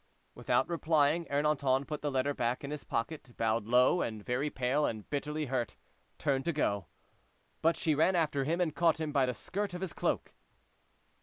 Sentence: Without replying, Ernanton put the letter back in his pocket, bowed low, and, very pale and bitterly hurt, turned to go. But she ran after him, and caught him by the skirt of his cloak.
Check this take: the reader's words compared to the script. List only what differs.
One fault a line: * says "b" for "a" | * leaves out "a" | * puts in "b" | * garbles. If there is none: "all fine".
all fine